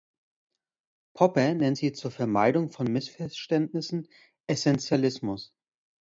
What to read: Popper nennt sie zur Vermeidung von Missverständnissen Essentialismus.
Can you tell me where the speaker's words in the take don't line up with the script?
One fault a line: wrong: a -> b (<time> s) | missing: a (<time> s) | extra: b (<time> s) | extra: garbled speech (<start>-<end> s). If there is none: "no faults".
no faults